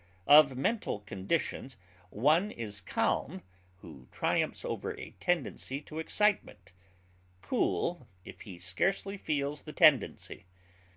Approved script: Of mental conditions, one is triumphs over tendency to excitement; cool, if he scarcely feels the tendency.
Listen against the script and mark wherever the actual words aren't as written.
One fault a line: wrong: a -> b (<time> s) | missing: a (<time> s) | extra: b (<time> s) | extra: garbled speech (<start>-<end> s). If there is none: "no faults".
extra: calm who (2.8 s)
extra: a (5.0 s)